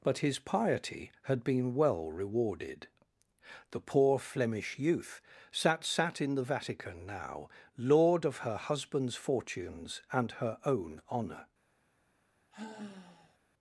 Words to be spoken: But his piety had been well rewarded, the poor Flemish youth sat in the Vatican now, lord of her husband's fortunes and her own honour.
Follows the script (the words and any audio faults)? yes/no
no